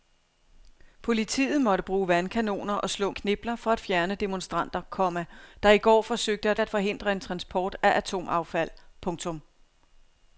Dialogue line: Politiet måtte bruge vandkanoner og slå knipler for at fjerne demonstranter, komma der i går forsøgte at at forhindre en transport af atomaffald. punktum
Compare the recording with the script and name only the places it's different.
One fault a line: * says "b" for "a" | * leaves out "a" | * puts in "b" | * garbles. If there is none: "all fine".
all fine